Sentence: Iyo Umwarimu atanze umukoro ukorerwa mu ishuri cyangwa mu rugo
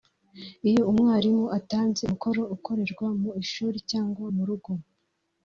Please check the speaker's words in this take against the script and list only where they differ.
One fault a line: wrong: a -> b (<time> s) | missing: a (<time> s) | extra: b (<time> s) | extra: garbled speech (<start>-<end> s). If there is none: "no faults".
no faults